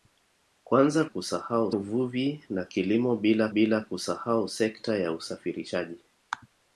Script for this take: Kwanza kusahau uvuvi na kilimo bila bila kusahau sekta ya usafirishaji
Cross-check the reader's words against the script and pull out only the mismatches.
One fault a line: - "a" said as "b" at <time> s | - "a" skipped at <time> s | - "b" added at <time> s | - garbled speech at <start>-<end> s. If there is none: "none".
none